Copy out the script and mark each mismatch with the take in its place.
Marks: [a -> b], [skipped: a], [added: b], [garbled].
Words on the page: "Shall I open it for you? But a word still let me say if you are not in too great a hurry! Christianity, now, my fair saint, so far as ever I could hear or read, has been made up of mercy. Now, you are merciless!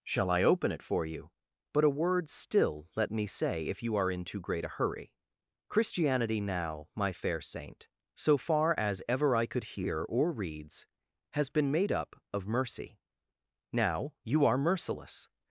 "Shall I open it for you? But a word still let me say if you are [skipped: not] in too great a hurry! Christianity, now, my fair saint, so far as ever I could hear or [read, -> reads] has been made up of mercy. Now, you are merciless!